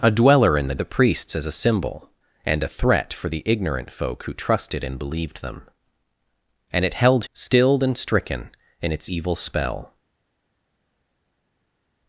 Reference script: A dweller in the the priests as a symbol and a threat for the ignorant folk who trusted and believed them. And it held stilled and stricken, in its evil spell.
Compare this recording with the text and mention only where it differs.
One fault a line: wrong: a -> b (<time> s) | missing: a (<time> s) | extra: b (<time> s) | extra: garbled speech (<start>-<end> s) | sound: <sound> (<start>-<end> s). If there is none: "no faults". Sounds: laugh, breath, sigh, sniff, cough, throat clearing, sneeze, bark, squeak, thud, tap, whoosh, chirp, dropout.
no faults